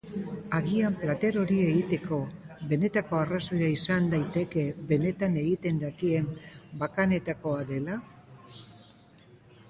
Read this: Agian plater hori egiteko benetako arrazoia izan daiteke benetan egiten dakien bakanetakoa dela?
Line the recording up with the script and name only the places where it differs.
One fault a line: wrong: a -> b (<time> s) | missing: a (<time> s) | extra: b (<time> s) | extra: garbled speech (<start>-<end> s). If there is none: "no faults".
no faults